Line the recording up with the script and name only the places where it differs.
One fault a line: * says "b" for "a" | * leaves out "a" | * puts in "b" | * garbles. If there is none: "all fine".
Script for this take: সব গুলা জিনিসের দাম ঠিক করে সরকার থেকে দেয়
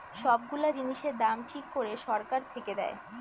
all fine